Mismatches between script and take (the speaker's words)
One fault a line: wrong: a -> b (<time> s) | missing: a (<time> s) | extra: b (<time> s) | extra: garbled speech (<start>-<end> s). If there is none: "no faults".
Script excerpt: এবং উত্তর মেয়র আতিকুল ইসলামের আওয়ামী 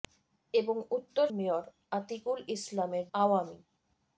no faults